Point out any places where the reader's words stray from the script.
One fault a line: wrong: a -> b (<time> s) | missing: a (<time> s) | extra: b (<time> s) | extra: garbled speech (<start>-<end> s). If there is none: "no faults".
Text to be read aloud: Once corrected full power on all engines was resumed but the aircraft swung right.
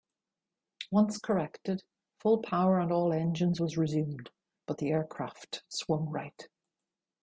no faults